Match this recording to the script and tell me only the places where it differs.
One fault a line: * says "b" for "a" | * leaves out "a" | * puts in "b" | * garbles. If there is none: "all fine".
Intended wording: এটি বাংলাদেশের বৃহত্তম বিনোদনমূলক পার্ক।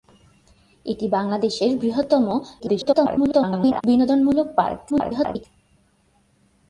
* garbles
* garbles